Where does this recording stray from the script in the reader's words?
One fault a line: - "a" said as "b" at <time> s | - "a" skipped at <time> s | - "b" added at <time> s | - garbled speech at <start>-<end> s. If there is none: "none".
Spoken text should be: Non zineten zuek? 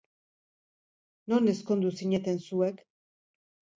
- "ezkondu" added at 1.5 s